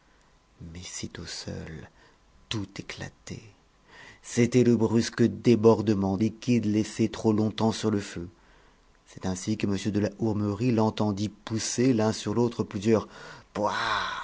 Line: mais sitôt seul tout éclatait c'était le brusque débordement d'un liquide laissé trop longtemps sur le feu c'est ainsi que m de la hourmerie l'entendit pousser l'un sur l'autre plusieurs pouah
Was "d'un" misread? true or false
true